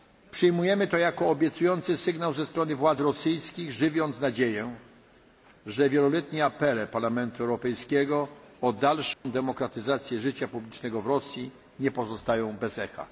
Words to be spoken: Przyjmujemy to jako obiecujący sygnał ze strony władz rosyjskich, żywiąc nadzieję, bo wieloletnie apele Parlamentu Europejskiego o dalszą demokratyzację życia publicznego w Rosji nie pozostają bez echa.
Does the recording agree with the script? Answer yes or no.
no